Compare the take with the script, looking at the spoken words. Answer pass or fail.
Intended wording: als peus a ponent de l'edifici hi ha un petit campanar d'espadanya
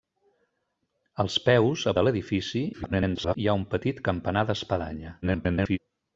fail